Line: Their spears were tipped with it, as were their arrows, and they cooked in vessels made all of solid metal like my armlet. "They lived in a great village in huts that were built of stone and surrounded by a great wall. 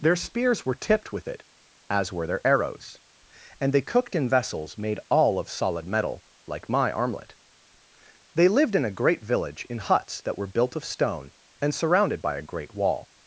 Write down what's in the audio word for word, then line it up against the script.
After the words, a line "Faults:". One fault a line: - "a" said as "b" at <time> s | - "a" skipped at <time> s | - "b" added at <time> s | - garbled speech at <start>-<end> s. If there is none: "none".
Their spears were tipped with it, as were their arrows, and they cooked in vessels made all of solid metal like my armlet. "They lived in a great village in huts that were built of stone and surrounded by a great wall.
Faults:
none